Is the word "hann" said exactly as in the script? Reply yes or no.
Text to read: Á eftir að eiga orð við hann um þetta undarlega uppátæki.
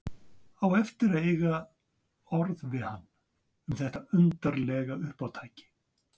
yes